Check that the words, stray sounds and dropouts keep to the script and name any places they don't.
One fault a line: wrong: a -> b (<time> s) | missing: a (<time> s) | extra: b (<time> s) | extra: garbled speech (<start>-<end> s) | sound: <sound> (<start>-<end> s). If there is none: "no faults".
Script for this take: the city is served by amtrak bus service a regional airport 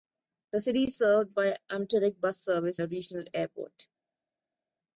no faults